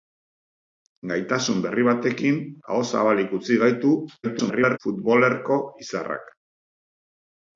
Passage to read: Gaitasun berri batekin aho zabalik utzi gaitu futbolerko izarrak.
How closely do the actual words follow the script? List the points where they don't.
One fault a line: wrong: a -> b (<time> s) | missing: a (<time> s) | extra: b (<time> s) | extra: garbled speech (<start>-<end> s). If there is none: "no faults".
extra: garbled speech (4.2-4.8 s)